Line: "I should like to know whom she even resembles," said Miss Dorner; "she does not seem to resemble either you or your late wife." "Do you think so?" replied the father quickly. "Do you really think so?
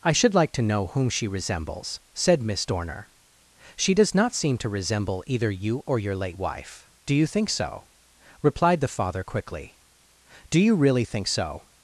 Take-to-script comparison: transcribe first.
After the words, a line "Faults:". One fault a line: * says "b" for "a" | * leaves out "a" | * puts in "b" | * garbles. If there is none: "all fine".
"I should like to know whom she resembles," said Miss Dorner; "she does not seem to resemble either you or your late wife." "Do you think so?" replied the father quickly. "Do you really think so?
Faults:
* leaves out "even"